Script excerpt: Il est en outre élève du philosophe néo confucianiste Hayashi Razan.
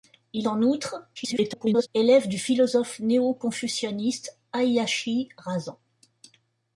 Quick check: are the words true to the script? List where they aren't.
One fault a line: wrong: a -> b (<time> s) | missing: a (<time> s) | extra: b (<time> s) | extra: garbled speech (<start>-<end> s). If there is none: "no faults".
missing: est (0.5 s)
extra: garbled speech (1.2-1.9 s)